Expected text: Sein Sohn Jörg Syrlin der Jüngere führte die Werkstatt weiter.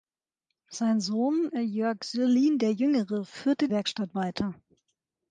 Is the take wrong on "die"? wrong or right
wrong